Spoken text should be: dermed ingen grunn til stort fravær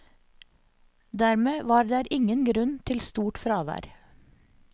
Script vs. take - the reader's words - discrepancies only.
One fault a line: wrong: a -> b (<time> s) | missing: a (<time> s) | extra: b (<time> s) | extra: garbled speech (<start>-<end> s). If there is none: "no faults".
extra: var der (1.7 s)